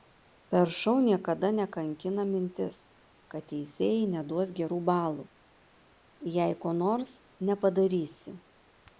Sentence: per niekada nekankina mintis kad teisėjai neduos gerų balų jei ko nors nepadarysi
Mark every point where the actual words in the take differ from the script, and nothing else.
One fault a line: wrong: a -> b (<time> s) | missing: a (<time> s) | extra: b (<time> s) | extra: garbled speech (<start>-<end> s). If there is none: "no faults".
extra: šou (0.8 s)